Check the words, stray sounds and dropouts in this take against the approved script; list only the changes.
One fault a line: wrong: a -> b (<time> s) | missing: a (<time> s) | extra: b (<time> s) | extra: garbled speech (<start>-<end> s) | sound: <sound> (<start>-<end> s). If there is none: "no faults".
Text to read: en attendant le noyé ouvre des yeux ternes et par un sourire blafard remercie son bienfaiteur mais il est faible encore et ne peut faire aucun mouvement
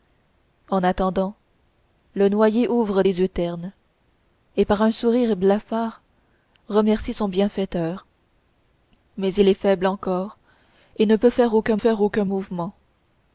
extra: faire aucun (11.8 s)